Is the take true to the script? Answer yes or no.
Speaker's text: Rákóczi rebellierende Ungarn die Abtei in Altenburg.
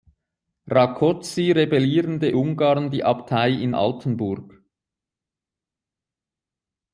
yes